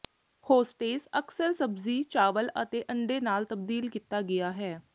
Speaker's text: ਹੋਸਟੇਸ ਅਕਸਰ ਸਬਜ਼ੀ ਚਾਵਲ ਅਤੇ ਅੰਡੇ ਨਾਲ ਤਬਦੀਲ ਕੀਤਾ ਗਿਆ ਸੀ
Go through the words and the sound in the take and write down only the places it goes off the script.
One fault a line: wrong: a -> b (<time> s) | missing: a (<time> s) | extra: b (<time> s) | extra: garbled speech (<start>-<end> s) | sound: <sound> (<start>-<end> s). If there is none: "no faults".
wrong: ਸੀ -> ਹੈ (4.5 s)